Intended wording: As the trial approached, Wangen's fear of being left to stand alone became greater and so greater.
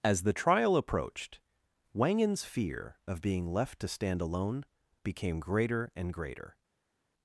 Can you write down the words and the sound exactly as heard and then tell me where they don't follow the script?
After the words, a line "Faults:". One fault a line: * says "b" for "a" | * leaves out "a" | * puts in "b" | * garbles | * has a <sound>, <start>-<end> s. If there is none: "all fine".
As the trial approached, Wangen's fear of being left to stand alone became greater and greater.
Faults:
* leaves out "so"